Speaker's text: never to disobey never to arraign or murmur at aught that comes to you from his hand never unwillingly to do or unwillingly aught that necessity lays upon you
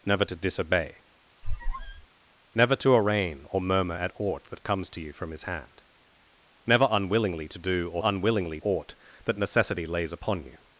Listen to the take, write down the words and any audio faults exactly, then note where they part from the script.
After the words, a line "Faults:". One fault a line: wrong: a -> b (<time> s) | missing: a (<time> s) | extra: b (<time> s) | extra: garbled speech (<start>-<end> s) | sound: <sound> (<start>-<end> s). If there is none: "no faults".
never to disobey never to arraign or murmur at aught that comes to you from his hand never unwillingly to do or unwillingly aught that necessity lays upon you
Faults:
sound: squeak (1.4-2.1 s)